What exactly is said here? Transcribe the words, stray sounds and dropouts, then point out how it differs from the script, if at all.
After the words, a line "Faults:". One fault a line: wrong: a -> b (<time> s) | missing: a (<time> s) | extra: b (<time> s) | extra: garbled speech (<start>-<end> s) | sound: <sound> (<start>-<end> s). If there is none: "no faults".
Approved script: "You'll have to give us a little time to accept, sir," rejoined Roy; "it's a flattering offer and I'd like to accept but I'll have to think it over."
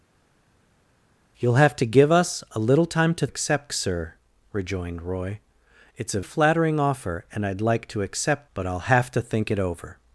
"You'll have to give us a little time to accept, sir," rejoined Roy; "it's a flattering offer and I'd like to accept but I'll have to think it over."
Faults:
no faults